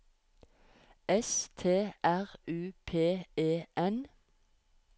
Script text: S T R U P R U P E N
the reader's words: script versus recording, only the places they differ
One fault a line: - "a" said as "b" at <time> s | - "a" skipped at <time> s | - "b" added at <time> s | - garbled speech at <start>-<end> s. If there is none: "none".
- "R U P" skipped at 3.3 s